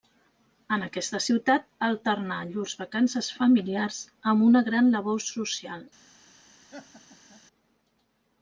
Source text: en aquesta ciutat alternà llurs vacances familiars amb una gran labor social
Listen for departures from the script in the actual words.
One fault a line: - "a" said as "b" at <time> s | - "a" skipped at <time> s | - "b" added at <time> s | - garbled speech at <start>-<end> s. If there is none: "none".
none